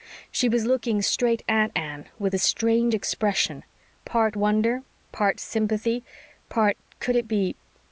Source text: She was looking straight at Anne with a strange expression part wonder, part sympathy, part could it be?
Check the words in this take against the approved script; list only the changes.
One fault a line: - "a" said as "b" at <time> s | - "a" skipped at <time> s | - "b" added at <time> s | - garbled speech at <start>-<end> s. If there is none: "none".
none